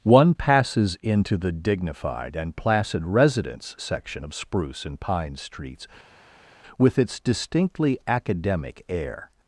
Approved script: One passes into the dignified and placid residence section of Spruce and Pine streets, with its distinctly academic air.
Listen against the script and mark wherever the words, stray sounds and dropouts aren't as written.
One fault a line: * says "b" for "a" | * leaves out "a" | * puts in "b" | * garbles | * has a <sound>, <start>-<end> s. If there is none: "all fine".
all fine